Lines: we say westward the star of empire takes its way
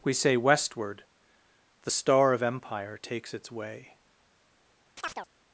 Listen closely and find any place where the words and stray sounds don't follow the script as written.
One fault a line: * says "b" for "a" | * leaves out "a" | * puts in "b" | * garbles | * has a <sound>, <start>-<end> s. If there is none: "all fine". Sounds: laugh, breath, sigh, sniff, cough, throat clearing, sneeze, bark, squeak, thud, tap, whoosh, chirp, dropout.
* has a chirp, 5.0-5.3 s